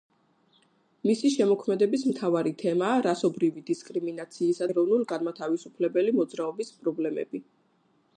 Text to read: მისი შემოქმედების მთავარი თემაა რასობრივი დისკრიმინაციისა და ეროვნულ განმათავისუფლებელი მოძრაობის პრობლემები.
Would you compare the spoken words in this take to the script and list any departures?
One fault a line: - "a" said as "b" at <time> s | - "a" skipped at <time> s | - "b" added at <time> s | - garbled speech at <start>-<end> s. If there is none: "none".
- "და" skipped at 4.7 s